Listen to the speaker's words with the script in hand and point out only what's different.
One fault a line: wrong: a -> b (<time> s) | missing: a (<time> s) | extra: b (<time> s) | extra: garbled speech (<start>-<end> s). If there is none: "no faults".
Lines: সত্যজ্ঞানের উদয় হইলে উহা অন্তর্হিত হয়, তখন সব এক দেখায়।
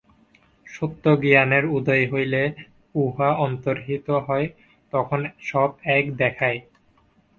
no faults